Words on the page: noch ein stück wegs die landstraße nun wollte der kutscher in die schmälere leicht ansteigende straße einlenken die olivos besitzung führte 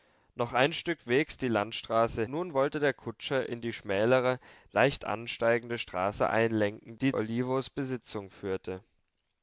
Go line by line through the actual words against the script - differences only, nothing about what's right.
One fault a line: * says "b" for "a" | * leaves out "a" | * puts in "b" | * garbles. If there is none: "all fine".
all fine